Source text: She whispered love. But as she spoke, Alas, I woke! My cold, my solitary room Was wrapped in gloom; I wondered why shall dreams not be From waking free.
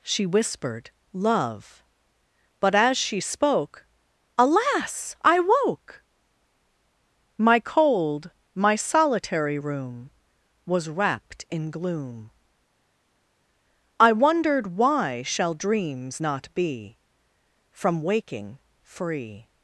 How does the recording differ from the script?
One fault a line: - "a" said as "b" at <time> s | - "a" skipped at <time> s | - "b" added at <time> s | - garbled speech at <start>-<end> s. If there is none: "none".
none